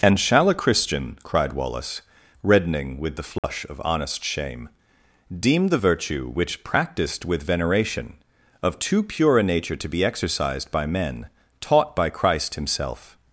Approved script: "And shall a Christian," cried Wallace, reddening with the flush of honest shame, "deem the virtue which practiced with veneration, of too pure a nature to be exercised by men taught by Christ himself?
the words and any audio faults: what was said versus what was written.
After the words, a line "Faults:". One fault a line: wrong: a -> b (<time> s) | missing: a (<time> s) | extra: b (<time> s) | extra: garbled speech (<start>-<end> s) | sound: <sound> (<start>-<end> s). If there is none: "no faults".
"And shall a Christian," cried Wallace, reddening with the flush of honest shame, "deem the virtue which practiced with veneration, of too pure a nature to be exercised by men taught by Christ himself?
Faults:
sound: dropout (3.4-3.4 s)